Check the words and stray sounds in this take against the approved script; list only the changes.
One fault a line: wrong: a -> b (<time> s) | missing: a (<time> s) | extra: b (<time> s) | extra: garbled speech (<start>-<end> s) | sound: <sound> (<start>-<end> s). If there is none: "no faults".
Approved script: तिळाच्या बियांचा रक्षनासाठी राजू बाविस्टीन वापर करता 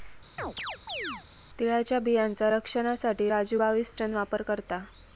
sound: chirp (0.4-1.2 s)